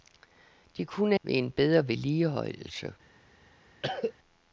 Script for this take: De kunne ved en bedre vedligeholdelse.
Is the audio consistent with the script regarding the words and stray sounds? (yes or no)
no